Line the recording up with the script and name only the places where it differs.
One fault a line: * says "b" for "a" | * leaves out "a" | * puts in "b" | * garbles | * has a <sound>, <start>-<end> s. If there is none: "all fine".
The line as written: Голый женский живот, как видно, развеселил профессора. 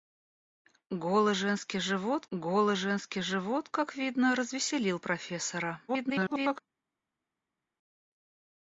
* puts in "голый женский живот"
* garbles